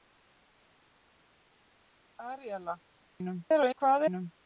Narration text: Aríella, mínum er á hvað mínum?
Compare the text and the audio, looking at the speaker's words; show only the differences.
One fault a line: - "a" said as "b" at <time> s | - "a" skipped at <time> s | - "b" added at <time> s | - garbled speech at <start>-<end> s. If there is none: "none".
none